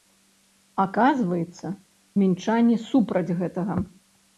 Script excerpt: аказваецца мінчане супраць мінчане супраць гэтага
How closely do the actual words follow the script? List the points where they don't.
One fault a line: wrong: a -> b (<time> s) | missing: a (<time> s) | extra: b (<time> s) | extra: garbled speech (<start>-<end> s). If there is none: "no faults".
missing: мінчане супраць (3.3 s)